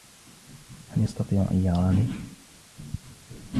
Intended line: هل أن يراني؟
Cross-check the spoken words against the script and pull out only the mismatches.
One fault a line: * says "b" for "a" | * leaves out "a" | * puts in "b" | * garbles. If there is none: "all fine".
* puts in "يستطيع"